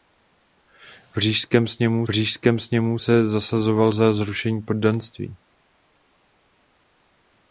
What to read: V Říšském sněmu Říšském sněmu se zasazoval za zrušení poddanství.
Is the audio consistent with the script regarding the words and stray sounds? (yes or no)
yes